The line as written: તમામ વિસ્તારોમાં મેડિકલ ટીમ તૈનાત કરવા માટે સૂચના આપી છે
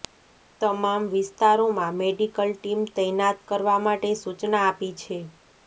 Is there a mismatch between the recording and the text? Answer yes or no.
no